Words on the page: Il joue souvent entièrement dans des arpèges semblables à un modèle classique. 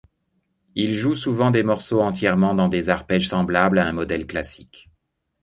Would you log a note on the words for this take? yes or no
yes